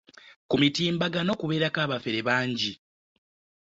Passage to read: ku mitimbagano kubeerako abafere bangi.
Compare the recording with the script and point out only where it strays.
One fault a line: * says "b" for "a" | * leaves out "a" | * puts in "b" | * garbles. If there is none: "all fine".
all fine